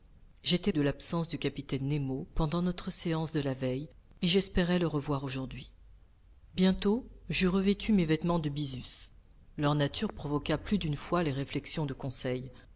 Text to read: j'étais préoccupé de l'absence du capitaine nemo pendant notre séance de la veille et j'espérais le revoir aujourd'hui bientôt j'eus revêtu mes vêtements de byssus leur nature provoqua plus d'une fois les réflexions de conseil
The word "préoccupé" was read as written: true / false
false